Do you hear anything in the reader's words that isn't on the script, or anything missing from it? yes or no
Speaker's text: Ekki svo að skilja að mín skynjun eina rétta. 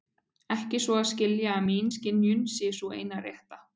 yes